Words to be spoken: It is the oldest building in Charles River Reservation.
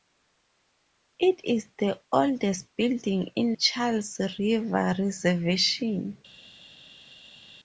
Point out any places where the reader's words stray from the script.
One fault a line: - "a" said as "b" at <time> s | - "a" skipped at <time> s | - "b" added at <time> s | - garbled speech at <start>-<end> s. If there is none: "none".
none